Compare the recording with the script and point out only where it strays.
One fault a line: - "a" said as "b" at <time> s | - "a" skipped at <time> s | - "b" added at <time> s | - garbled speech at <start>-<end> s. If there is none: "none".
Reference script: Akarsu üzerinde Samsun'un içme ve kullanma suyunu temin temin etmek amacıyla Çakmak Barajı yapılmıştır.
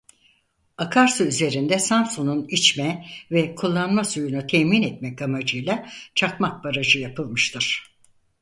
- "temin" skipped at 4.8 s